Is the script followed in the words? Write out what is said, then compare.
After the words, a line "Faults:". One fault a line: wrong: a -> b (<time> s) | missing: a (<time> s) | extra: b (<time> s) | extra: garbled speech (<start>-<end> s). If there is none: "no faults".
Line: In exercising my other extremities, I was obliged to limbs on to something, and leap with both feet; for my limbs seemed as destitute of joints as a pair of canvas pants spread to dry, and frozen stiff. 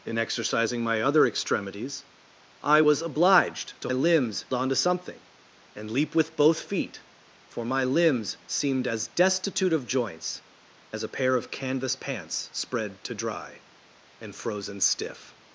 In exercising my other extremities, I was obliged to limbs on to something, and leap with both feet; for my limbs seemed as destitute of joints as a pair of canvas pants spread to dry, and frozen stiff.
Faults:
no faults